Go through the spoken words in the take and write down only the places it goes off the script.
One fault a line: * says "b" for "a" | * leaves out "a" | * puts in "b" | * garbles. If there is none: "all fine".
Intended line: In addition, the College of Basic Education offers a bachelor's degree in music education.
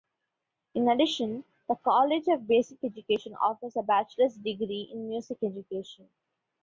all fine